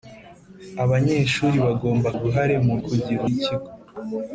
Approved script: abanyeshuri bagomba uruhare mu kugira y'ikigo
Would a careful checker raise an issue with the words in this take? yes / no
no